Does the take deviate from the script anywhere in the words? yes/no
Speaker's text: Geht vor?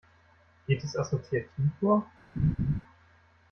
yes